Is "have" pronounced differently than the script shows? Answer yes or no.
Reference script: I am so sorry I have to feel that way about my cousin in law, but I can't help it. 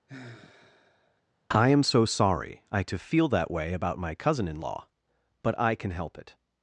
yes